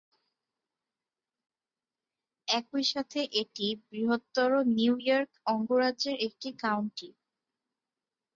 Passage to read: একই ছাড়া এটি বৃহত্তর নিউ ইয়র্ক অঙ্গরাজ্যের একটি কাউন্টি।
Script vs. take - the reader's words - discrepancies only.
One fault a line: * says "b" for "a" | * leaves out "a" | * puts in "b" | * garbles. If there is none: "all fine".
* says "সাথে" for "ছাড়া"